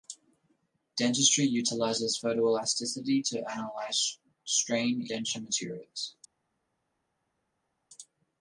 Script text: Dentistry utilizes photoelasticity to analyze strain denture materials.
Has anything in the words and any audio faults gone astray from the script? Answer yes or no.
no